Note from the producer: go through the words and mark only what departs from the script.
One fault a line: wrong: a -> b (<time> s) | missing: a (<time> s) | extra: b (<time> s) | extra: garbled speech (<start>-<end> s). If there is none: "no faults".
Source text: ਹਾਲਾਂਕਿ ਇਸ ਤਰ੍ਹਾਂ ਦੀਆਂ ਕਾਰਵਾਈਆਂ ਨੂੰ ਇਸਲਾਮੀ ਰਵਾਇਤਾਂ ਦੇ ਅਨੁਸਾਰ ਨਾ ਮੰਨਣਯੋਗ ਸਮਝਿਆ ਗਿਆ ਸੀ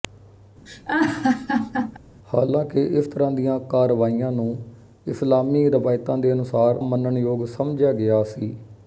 missing: ਨਾ (6.8 s)